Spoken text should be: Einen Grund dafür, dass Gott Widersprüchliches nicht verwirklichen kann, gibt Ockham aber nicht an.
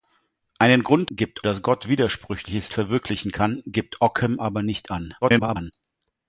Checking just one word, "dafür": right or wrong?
wrong